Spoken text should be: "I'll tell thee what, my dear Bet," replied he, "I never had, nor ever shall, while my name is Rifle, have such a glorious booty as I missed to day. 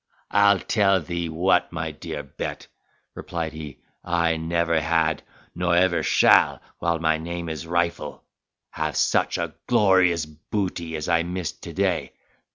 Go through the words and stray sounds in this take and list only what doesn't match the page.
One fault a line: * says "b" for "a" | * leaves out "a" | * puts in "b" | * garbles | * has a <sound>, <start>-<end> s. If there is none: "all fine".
all fine